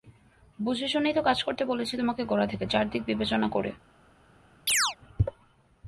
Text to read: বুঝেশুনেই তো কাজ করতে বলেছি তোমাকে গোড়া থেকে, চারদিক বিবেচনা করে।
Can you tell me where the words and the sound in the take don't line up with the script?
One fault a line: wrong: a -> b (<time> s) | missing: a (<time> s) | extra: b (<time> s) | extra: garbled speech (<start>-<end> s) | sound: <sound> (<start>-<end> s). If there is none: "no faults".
sound: chirp (4.7-5.0 s)